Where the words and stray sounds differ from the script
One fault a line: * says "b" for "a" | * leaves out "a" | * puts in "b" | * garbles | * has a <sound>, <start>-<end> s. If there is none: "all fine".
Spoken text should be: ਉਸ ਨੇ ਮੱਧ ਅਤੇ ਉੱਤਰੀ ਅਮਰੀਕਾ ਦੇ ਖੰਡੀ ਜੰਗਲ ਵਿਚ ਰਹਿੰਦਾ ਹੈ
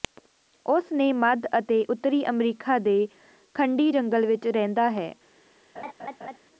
* has a laugh, 5.8-6.4 s